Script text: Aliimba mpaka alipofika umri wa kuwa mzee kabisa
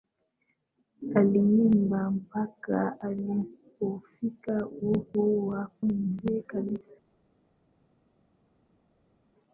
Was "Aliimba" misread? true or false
false